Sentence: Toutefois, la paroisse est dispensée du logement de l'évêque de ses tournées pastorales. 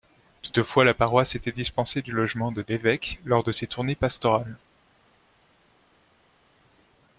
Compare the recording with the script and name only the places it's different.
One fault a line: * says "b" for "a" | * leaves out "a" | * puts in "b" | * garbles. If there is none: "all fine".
* says "était" for "est"
* puts in "lors"